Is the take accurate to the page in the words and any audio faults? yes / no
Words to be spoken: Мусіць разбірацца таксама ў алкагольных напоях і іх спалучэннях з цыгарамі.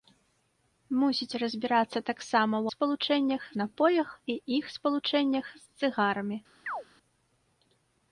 no